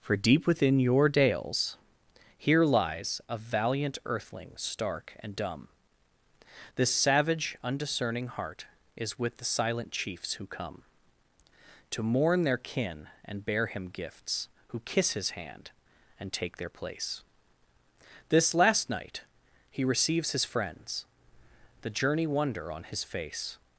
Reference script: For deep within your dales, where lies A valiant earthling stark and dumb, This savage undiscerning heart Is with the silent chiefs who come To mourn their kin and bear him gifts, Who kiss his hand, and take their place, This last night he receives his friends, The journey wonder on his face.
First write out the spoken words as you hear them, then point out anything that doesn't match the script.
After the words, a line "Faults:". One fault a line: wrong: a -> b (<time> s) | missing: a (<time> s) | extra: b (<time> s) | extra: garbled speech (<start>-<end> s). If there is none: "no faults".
For deep within your dales, here lies A valiant earthling stark and dumb, This savage undiscerning heart Is with the silent chiefs who come To mourn their kin and bear him gifts, Who kiss his hand, and take their place, This last night he receives his friends, The journey wonder on his face.
Faults:
wrong: where -> here (2.4 s)